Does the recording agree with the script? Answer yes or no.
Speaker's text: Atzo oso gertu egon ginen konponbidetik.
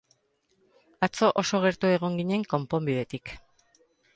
yes